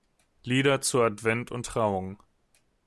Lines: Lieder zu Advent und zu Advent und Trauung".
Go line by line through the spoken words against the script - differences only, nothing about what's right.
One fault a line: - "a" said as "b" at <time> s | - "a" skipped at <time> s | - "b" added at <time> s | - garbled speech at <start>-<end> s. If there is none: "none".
- "zu Advent und" skipped at 1.7 s